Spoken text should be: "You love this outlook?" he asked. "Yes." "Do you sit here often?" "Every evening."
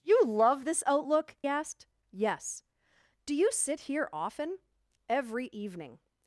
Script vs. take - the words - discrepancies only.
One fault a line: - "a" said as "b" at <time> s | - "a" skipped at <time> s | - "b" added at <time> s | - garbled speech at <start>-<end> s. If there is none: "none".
- "he" skipped at 1.4 s